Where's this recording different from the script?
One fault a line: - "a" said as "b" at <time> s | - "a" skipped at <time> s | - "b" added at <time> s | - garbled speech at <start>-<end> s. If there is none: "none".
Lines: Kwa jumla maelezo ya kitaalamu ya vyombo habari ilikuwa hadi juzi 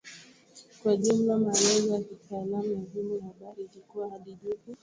none